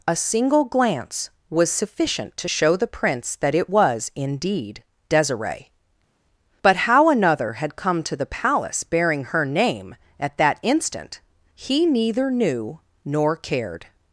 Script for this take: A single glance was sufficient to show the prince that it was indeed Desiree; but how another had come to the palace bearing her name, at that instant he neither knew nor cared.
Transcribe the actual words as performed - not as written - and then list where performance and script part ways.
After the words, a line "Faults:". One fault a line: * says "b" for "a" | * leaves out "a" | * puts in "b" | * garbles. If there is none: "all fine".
A single glance was sufficient to show the prince that it was indeed Desiree; but how another had come to the palace bearing her name, at that instant he neither knew nor cared.
Faults:
all fine